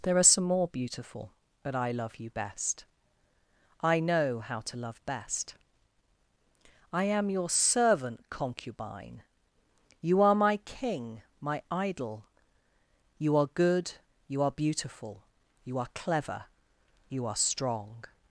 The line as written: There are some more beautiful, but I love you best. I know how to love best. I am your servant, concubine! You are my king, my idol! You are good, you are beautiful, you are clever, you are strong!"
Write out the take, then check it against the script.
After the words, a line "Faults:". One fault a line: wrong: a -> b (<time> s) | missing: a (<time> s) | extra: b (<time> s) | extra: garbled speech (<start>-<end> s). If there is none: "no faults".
There are some more beautiful, but I love you best. I know how to love best. I am your servant, concubine! You are my king, my idol! You are good, you are beautiful, you are clever, you are strong!"
Faults:
no faults